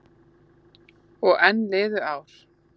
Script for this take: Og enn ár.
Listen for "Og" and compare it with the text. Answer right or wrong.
right